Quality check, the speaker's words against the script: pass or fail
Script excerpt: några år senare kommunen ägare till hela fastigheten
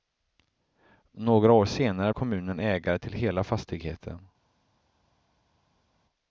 pass